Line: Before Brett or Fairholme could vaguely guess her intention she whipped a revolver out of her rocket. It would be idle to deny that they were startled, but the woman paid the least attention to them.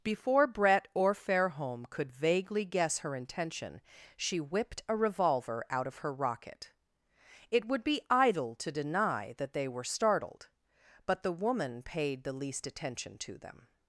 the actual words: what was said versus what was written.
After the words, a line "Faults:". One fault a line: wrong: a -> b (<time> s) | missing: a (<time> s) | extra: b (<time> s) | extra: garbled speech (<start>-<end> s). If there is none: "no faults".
Before Brett or Fairholme could vaguely guess her intention she whipped a revolver out of her rocket. It would be idle to deny that they were startled, but the woman paid the least attention to them.
Faults:
no faults